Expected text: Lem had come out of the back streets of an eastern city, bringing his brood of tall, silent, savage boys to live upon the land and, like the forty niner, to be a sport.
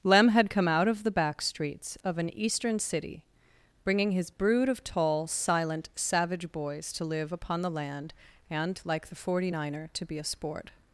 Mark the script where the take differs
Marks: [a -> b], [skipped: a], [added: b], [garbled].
Lem had come out of the back streets of an eastern city, bringing his brood of tall, silent, savage boys to live upon the land and, like the forty niner, to be a sport.